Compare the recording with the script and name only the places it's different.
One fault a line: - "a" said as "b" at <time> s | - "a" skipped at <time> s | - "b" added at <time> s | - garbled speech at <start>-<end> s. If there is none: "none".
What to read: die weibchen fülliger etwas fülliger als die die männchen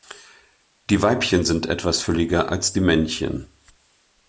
- "fülliger" said as "sind" at 1.4 s
- "die" skipped at 2.8 s